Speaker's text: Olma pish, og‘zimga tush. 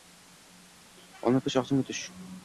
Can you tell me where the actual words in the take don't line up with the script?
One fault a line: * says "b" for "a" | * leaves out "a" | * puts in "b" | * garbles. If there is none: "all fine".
all fine